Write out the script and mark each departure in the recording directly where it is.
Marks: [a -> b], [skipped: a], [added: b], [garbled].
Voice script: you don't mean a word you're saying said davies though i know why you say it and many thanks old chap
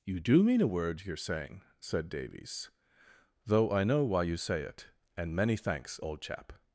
you [don't -> do] mean a word you're saying said davies though i know why you say it and many thanks old chap